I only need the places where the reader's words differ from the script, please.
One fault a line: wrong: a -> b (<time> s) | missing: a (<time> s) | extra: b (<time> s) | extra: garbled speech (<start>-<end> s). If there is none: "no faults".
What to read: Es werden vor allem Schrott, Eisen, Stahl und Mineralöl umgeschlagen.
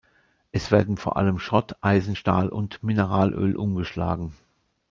no faults